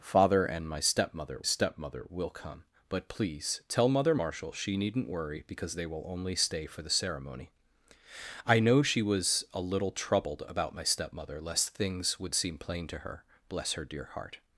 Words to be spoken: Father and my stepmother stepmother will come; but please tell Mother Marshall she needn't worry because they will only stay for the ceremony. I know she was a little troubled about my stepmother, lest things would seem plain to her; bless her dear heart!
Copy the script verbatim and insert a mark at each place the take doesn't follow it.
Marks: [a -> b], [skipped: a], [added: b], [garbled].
Father and my stepmother stepmother will come; but please tell Mother Marshall she needn't worry because they will only stay for the ceremony. I know she was a little troubled about my stepmother, lest things would seem plain to her; bless her dear heart!